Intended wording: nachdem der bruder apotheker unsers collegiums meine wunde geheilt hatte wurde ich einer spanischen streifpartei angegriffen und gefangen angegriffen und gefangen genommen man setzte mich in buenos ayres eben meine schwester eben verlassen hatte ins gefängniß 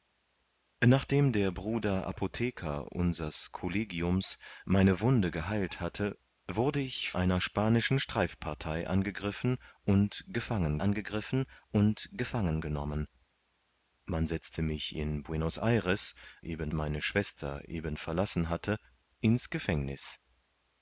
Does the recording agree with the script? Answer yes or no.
yes